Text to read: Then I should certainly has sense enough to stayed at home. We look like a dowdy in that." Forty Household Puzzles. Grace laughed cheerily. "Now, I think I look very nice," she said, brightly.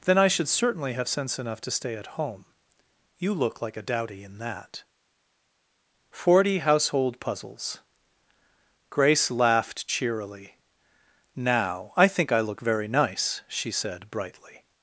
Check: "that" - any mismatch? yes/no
no